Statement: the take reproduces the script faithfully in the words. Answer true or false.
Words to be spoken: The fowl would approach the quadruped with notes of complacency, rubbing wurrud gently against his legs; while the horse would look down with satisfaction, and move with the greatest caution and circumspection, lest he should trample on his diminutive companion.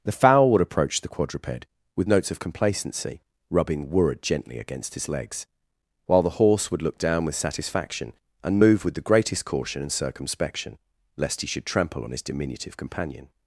true